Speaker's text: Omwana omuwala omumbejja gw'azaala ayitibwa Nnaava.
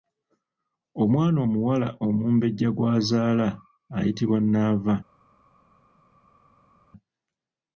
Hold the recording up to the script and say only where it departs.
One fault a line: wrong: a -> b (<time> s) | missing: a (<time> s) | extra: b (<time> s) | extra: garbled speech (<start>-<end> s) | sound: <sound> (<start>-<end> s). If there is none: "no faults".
no faults